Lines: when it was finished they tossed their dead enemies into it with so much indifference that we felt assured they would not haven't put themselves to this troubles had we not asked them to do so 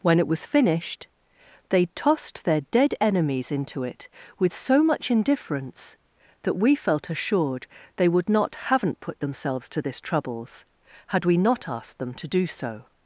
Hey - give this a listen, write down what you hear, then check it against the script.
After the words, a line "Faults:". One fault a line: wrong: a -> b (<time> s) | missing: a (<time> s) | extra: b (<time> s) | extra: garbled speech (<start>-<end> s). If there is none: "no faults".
when it was finished they tossed their dead enemies into it with so much indifference that we felt assured they would not haven't put themselves to this troubles had we not asked them to do so
Faults:
no faults